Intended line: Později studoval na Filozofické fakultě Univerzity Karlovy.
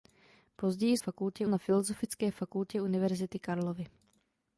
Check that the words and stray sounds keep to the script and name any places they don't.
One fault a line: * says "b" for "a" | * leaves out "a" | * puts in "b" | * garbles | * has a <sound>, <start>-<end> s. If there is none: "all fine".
* says "fakultě" for "studoval"